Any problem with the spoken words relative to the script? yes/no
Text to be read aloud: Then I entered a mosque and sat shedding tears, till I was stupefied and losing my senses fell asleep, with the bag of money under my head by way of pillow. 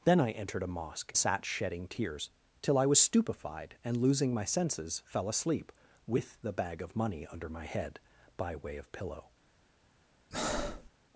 yes